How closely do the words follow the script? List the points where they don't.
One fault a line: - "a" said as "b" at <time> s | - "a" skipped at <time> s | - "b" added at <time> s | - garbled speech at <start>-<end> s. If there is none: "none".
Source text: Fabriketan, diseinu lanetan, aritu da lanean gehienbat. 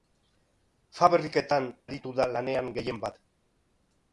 - "diseinu lanetan" skipped at 1.7 s